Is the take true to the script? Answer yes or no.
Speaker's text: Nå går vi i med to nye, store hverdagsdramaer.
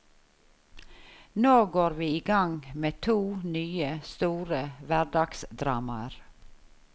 no